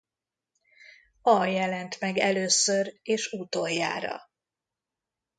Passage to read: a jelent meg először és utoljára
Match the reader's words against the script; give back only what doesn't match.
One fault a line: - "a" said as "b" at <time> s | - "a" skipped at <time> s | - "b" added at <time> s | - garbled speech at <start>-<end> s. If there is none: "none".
none